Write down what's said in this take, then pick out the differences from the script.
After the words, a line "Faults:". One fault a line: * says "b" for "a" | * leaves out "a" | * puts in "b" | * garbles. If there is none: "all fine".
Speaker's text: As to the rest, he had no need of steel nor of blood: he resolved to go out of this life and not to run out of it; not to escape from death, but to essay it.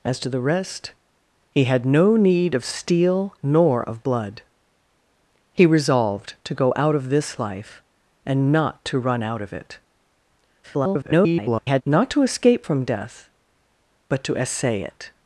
As to the rest, he had no need of steel nor of blood: he resolved to go out of this life and not to run out of it; [garbled] not to escape from death, but to essay it.
Faults:
* garbles